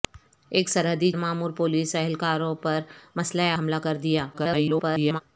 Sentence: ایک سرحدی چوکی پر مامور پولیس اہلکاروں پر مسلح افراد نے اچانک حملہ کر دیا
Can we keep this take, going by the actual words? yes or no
no